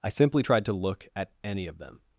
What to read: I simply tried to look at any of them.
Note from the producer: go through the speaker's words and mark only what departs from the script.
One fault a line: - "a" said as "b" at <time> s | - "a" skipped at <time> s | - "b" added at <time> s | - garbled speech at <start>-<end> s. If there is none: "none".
none